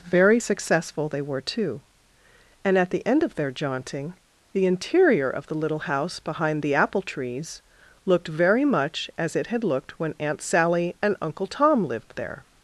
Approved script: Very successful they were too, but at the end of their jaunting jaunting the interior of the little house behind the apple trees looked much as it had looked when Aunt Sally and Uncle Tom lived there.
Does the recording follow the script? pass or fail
fail